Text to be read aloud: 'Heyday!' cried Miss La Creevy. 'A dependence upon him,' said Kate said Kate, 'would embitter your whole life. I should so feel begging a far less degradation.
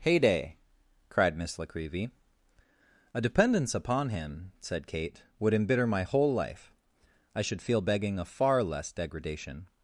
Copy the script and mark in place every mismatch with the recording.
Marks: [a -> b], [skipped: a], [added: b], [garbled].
'Heyday!' cried Miss La Creevy. 'A dependence upon him,' said Kate [skipped: said Kate,] 'would embitter [your -> my] whole life. I should [skipped: so] feel begging a far less degradation.